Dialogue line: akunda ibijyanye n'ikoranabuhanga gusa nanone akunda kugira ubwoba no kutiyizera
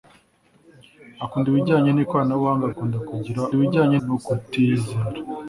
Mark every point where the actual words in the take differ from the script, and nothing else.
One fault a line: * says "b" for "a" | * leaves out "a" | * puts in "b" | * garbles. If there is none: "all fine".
* leaves out "gusa nanone"
* says "ibijyanye" for "ubwoba"